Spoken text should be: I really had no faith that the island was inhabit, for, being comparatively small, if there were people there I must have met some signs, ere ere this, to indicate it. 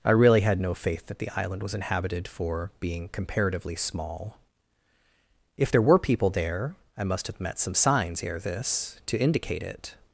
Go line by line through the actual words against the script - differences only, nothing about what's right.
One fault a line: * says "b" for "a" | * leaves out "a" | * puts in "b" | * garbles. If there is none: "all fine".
* says "inhabited" for "inhabit"
* leaves out "ere"